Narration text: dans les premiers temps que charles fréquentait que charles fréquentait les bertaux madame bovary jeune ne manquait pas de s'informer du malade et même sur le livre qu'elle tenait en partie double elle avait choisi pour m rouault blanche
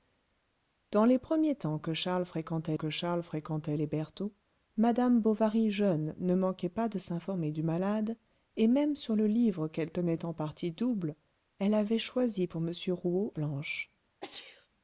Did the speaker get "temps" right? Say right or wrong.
right